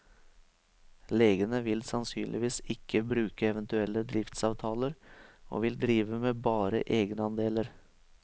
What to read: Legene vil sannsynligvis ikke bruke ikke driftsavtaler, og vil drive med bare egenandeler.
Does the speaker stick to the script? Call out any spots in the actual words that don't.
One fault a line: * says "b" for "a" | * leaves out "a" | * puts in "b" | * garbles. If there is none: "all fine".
* says "eventuelle" for "ikke"